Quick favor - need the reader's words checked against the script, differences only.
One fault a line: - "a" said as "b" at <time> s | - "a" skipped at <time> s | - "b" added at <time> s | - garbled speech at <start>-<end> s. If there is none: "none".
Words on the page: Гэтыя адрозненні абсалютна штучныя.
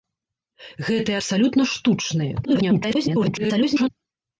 - "адрозненні" skipped at 1.2 s
- garbled speech at 2.4-3.9 s